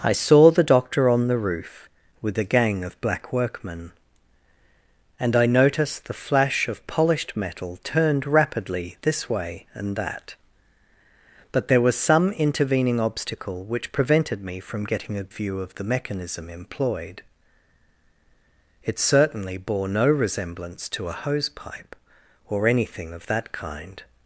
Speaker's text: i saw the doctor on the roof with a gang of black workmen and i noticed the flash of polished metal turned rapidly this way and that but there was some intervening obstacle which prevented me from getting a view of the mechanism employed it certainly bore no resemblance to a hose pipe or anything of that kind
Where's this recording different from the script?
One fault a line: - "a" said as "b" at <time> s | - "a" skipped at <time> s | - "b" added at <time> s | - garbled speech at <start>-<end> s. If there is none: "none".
none